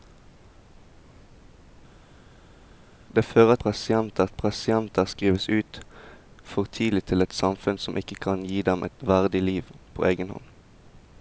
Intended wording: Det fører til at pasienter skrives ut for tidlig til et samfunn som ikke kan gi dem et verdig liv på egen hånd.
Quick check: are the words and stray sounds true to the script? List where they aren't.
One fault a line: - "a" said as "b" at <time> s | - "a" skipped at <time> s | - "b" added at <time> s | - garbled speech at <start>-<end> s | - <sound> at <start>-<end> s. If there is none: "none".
- "til" said as "pasienter" at 3.6 s